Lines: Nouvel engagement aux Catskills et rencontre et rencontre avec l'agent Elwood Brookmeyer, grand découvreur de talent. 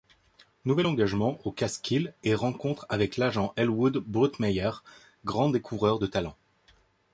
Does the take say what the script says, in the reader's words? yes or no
no